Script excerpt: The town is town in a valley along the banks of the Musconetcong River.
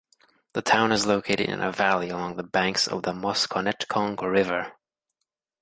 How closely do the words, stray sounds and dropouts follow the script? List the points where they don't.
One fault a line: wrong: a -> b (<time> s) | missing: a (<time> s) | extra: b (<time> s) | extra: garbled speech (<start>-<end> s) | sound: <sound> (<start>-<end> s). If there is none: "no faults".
wrong: town -> located (1.1 s)